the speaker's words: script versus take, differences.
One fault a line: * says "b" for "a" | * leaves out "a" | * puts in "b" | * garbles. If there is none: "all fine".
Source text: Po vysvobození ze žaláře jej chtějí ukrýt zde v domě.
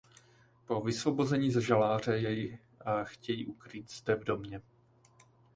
all fine